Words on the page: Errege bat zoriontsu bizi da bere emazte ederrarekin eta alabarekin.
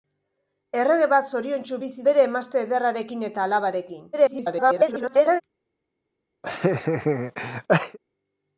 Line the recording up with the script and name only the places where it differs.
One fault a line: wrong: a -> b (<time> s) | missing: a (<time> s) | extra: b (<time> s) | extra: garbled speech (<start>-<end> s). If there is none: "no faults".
missing: da (2.1 s)
extra: garbled speech (4.1-5.4 s)